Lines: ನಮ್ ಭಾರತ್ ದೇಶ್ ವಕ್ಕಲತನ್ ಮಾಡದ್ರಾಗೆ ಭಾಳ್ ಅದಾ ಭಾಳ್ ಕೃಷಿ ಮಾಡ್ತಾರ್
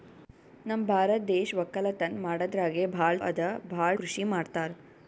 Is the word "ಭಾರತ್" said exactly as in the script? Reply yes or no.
yes